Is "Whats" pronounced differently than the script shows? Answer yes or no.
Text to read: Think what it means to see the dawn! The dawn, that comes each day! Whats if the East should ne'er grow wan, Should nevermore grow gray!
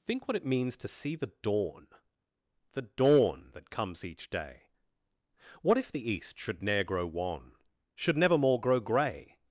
yes